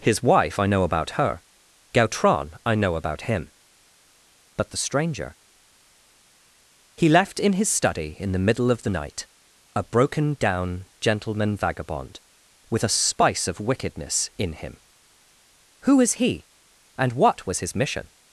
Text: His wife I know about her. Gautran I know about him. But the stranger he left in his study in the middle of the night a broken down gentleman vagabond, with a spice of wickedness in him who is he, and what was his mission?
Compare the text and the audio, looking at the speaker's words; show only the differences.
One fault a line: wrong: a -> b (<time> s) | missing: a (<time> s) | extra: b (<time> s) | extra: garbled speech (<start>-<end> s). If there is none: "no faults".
no faults